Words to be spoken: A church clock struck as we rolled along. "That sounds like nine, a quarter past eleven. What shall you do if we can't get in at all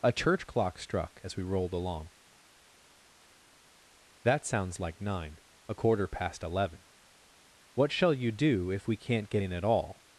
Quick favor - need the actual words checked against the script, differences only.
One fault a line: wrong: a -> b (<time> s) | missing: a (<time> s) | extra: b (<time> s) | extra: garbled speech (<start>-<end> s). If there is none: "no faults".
no faults